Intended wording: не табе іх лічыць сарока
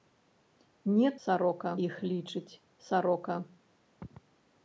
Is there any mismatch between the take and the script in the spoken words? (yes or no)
yes